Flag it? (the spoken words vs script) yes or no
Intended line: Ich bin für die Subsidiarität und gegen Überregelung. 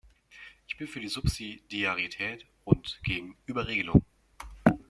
no